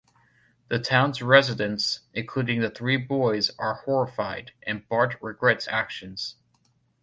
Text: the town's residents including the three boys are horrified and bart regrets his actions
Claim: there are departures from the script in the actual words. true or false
true